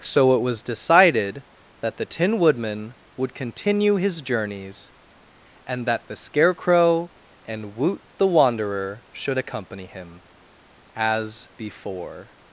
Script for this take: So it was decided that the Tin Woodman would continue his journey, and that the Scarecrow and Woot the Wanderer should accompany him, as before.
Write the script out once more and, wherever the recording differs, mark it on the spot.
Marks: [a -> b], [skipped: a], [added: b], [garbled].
So it was decided that the Tin Woodman would continue his [journey, -> journeys] and that the Scarecrow and Woot the Wanderer should accompany him, as before.